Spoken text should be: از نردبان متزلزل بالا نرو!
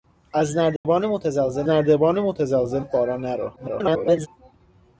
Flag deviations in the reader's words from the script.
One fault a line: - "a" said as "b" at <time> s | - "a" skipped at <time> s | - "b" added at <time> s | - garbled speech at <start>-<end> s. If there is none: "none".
- "نردبان متزلزل" added at 1.7 s
- garbled speech at 3.6-4.3 s